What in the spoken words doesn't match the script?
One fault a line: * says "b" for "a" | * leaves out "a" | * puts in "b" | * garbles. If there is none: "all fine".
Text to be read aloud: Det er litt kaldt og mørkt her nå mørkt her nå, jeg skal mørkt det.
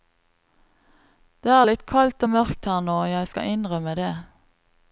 * leaves out "mørkt her nå"
* says "innrømme" for "mørkt"